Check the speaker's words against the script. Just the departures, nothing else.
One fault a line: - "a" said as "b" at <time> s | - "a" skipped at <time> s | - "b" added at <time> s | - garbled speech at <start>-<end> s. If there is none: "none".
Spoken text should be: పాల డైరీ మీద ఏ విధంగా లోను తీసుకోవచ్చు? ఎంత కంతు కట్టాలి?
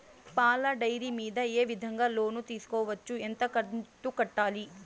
none